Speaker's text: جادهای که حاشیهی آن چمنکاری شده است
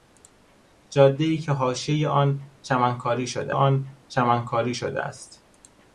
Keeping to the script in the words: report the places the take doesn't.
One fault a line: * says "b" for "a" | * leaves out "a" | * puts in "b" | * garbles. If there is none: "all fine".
* puts in "آن چمنکاری شده"